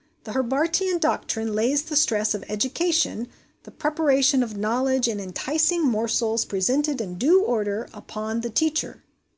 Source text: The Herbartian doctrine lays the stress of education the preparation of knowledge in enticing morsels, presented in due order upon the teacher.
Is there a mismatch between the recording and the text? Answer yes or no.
no